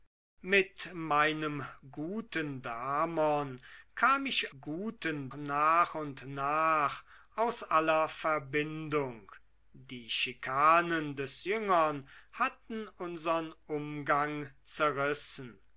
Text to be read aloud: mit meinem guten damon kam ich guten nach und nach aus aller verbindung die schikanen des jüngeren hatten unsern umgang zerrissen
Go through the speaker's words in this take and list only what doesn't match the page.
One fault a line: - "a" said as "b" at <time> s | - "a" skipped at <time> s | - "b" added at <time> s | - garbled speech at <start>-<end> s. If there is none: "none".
none